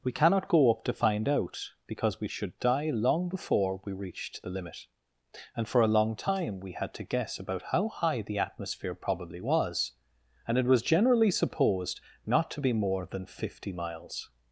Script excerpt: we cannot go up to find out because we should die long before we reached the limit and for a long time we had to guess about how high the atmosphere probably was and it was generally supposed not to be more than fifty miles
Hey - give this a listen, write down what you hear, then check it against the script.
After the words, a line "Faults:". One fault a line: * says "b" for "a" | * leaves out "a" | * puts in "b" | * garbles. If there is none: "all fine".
we cannot go up to find out because we should die long before we reached the limit and for a long time we had to guess about how high the atmosphere probably was and it was generally supposed not to be more than fifty miles
Faults:
all fine